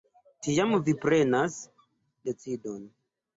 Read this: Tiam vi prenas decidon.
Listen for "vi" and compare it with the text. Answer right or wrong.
right